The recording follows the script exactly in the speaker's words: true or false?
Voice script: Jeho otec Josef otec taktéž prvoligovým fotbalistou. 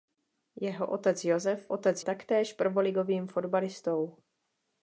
true